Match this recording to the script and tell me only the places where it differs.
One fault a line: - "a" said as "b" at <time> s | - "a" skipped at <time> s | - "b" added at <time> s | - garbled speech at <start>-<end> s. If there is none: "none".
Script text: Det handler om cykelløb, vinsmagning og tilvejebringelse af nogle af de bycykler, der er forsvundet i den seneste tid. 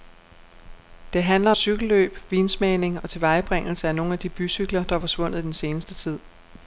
- "om" skipped at 1.5 s